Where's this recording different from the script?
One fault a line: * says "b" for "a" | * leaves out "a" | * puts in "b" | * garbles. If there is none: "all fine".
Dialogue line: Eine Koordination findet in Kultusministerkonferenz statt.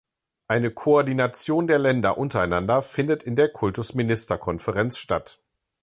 * puts in "der Länder untereinander"
* puts in "der"